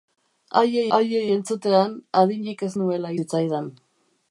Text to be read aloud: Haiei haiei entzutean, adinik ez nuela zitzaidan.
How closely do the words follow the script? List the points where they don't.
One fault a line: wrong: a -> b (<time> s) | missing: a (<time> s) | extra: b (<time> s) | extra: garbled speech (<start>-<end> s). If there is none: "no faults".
no faults